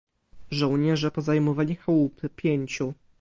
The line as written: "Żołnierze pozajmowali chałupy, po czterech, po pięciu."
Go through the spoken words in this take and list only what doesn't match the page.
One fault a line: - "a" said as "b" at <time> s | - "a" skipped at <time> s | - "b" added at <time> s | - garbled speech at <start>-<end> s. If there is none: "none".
- "po czterech po" skipped at 2.3 s